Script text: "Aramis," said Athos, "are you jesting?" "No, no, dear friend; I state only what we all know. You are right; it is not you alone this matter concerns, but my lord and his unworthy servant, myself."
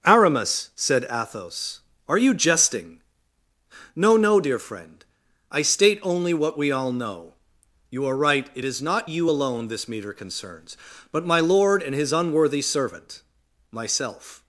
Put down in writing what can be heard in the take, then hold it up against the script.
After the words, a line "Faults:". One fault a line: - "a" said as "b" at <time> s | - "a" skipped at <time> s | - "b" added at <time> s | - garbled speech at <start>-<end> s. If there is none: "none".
"Aramis," said Athos, "are you jesting?" "No, no, dear friend; I state only what we all know. You are right; it is not you alone this meter concerns, but my lord and his unworthy servant, myself."
Faults:
- "matter" said as "meter" at 9.9 s